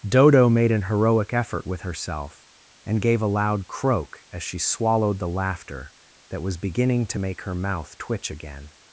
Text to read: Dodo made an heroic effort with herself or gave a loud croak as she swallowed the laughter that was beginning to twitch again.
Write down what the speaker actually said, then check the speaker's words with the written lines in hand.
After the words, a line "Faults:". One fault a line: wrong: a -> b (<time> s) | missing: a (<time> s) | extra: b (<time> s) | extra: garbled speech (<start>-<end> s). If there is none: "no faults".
Dodo made an heroic effort with herself and gave a loud croak as she swallowed the laughter that was beginning to make her mouth twitch again.
Faults:
wrong: or -> and (2.9 s)
extra: make her mouth (7.2 s)